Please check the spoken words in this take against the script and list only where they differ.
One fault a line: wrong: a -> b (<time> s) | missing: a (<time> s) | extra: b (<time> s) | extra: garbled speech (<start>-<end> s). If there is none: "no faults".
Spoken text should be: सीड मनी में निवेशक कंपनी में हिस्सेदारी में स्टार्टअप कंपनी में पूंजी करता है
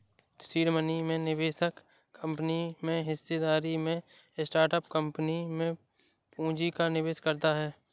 extra: का निवेश (6.7 s)